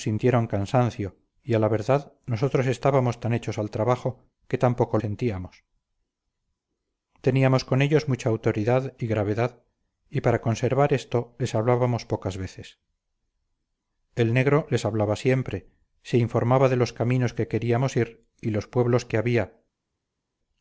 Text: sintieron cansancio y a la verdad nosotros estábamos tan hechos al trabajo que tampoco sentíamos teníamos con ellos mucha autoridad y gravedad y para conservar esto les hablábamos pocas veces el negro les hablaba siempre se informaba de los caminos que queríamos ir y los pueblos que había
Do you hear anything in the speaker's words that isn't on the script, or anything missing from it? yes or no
no